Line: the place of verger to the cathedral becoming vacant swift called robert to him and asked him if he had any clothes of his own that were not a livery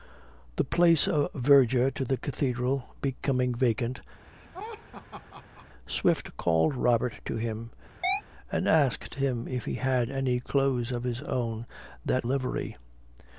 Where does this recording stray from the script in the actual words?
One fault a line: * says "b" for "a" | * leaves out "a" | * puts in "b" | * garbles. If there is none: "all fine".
* leaves out "were not a"